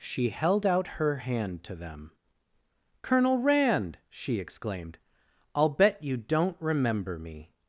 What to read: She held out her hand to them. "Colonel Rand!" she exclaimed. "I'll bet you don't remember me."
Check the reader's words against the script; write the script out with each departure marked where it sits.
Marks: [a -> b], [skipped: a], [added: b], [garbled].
She held out her hand to them. "Colonel Rand!" she exclaimed. "I'll bet you don't remember me."